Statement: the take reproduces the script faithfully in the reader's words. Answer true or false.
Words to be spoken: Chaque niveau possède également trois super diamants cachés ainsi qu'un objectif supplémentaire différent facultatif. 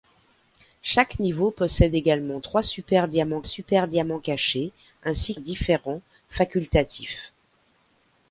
false